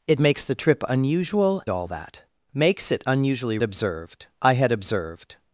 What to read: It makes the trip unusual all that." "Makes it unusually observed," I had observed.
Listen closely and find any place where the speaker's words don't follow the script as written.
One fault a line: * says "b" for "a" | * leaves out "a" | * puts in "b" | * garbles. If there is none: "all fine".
all fine